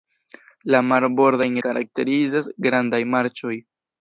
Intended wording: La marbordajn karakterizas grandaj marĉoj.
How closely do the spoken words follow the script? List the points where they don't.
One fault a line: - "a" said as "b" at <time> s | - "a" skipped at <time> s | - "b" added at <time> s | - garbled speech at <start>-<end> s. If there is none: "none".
none